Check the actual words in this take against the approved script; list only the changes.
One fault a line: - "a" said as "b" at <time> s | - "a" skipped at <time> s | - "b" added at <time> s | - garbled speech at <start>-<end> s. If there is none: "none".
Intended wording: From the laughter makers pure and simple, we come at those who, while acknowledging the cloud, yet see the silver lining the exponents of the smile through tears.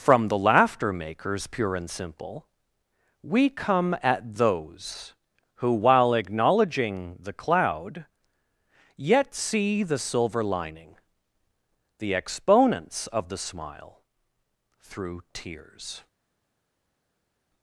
none